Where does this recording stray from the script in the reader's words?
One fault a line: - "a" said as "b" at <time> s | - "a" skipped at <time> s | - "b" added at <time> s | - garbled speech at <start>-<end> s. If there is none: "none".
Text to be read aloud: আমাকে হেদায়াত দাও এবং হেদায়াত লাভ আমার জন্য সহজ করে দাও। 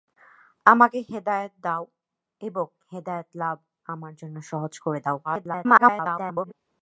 - garbled speech at 5.2-6.5 s